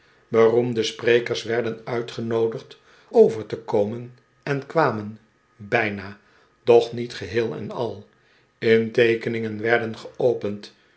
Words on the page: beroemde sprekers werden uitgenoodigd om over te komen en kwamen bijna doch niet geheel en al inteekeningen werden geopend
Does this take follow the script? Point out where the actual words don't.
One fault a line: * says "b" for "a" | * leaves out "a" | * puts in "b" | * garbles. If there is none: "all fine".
* leaves out "om"